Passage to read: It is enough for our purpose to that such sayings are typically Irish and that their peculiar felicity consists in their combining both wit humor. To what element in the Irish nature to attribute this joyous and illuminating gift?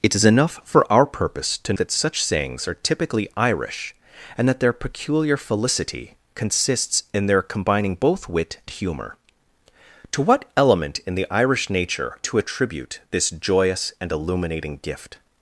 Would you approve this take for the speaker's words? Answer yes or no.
yes